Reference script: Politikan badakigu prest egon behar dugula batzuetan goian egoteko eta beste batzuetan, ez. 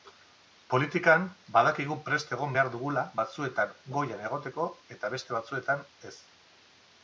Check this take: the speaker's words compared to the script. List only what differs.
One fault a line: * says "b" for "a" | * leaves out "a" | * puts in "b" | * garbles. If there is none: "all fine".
all fine